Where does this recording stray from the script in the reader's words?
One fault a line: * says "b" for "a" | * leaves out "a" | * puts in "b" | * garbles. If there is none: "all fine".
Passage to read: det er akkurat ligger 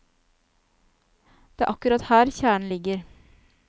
* puts in "her kjernen"